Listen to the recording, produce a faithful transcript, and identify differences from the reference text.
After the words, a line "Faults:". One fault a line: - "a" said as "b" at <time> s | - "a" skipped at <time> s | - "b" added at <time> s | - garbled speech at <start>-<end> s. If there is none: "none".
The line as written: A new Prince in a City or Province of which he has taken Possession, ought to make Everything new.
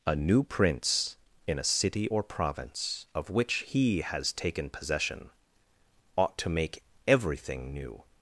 A new Prince in a City or Province of which he has taken Possession, ought to make Everything new.
Faults:
none